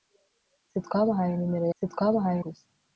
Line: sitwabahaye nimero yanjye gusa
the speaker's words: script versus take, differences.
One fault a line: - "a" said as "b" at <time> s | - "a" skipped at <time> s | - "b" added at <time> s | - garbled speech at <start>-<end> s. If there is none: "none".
- "yanjye" said as "sitwabahaye" at 1.8 s